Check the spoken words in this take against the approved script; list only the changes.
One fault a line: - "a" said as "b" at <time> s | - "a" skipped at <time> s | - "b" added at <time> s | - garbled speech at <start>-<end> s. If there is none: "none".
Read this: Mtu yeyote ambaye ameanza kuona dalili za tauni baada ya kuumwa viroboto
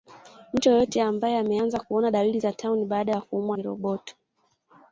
none